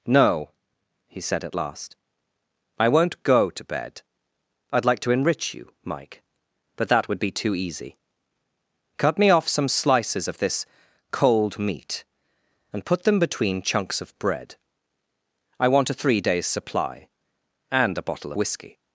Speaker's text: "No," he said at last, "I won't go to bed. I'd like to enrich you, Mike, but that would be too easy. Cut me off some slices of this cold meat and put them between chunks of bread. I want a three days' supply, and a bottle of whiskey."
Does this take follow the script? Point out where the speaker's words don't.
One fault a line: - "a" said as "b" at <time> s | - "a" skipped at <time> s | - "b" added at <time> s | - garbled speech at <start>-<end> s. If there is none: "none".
- "of" skipped at 18.3 s